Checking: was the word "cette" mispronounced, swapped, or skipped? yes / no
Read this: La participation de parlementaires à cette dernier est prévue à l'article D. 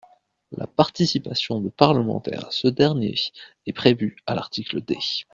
yes